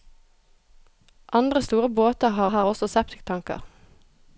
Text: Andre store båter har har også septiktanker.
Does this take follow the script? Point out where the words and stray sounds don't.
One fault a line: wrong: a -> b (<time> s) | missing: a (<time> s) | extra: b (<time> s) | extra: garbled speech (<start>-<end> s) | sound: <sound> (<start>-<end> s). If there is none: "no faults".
no faults